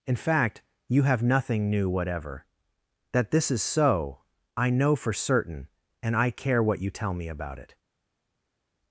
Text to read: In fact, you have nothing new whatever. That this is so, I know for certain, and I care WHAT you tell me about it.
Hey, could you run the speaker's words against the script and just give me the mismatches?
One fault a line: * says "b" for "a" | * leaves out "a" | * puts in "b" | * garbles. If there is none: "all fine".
all fine